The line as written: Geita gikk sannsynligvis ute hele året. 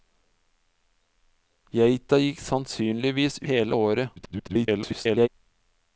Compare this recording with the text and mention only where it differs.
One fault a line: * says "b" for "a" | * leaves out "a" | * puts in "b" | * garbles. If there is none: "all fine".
* leaves out "ute"
* garbles